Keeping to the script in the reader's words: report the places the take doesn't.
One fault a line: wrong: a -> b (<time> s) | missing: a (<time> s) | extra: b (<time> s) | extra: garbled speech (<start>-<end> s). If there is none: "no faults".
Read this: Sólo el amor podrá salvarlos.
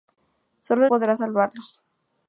missing: el amor (0.9 s)